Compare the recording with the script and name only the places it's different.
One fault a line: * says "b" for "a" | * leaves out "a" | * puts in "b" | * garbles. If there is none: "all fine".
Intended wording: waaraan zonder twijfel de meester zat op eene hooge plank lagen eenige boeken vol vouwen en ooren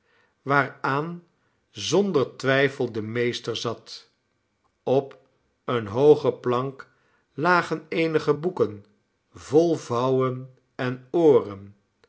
all fine